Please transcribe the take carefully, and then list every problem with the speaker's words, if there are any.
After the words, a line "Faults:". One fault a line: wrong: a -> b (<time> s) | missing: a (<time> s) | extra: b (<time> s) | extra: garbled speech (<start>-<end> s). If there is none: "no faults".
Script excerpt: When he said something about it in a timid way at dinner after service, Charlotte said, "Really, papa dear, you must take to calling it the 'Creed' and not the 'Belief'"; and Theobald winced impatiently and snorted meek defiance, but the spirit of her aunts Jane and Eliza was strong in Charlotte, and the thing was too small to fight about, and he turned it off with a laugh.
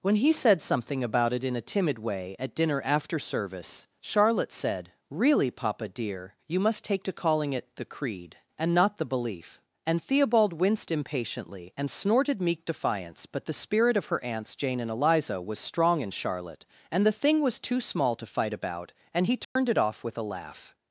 When he said something about it in a timid way at dinner after service, Charlotte said, "Really, papa dear, you must take to calling it the 'Creed' and not the 'Belief'"; and Theobald winced impatiently and snorted meek defiance, but the spirit of her aunts Jane and Eliza was strong in Charlotte, and the thing was too small to fight about, and he turned it off with a laugh.
Faults:
no faults